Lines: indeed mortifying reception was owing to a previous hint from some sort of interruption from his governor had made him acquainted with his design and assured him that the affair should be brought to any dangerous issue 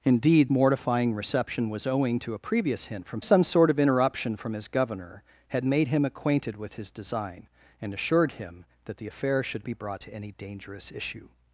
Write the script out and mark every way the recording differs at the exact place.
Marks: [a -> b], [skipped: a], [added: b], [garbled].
indeed mortifying reception was owing to a previous hint from some sort of interruption from his governor had made him acquainted with his design and assured him that the affair should be brought to any dangerous issue